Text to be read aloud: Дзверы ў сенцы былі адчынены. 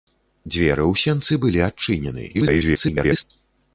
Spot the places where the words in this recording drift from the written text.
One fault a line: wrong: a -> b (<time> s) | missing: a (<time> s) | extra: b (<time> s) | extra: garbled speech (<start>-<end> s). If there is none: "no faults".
extra: garbled speech (2.3-3.2 s)